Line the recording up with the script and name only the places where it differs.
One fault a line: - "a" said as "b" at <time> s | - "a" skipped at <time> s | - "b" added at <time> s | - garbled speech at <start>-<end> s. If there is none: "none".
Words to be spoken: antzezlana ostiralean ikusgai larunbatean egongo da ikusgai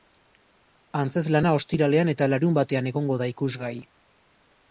- "ikusgai" said as "eta" at 2.1 s